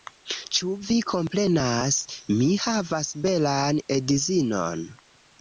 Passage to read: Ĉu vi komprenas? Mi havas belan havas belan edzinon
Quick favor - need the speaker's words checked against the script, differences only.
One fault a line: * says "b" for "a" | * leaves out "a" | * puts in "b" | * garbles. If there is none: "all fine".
* leaves out "havas belan"